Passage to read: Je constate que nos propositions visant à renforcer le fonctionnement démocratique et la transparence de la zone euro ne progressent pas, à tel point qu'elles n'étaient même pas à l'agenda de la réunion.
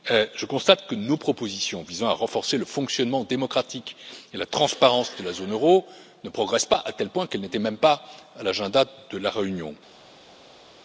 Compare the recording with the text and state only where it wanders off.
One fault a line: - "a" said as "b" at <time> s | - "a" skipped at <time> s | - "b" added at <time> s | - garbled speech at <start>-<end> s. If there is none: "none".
none